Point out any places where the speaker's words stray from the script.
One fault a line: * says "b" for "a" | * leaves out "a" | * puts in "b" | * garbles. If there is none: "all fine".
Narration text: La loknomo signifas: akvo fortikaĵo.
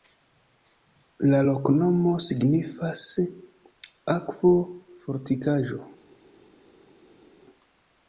all fine